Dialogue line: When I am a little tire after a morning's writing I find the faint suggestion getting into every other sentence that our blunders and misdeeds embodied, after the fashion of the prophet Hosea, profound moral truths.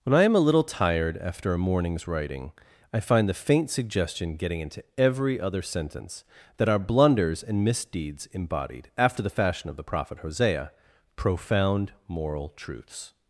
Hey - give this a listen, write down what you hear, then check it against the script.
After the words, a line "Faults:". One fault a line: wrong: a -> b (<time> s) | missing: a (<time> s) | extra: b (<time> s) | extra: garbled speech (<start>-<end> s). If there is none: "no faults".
When I am a little tired after a morning's writing I find the faint suggestion getting into every other sentence that our blunders and misdeeds embodied, after the fashion of the prophet Hosea, profound moral truths.
Faults:
wrong: tire -> tired (0.6 s)